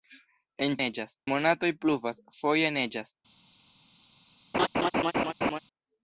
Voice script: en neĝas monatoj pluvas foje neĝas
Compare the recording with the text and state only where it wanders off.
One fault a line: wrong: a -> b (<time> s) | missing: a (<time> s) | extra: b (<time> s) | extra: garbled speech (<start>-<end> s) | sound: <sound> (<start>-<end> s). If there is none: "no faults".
sound: laugh (4.5-5.6 s)